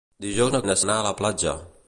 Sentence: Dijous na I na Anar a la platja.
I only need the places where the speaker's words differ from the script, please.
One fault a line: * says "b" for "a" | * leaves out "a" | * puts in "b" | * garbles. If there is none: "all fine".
all fine